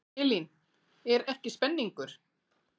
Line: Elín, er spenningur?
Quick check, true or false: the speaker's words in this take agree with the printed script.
false